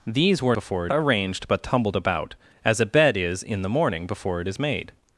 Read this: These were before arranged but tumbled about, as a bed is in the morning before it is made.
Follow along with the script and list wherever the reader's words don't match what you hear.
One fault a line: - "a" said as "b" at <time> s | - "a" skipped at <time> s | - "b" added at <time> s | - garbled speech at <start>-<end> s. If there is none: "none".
none